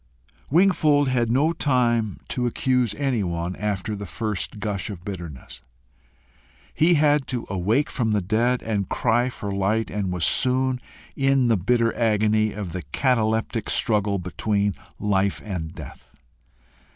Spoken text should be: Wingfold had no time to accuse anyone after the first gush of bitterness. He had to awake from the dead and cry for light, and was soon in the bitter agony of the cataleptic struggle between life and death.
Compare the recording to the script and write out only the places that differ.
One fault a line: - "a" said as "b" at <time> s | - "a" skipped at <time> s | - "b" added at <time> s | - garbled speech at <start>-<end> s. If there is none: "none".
none